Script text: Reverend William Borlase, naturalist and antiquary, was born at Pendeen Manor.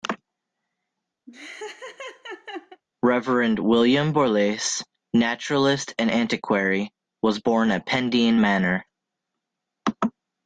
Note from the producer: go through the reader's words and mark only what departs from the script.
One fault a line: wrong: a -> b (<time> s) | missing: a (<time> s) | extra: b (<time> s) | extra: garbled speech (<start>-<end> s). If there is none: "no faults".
no faults